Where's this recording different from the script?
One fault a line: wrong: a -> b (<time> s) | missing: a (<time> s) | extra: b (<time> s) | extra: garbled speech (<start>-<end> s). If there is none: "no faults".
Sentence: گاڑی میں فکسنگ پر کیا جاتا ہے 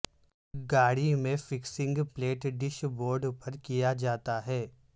extra: پلیٹ ڈیش بورڈ (2.1 s)